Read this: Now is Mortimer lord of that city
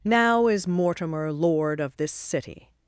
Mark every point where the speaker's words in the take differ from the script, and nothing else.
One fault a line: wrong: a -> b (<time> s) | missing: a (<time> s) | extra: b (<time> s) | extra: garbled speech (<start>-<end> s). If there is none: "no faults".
wrong: that -> this (2.0 s)